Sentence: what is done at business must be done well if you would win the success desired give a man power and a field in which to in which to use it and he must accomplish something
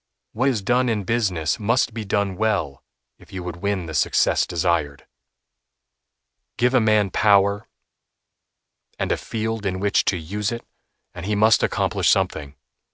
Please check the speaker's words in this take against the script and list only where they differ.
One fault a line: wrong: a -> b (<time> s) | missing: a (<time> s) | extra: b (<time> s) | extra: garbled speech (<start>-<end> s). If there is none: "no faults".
wrong: at -> in (0.9 s)
missing: in which to (10.2 s)